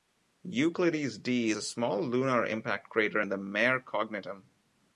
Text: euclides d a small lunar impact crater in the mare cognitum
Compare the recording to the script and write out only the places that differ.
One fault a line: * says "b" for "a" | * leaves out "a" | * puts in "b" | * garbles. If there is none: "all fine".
all fine